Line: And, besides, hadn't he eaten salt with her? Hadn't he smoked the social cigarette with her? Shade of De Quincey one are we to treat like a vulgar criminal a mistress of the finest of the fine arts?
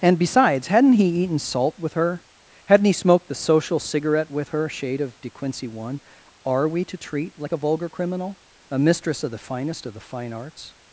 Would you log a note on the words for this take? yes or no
no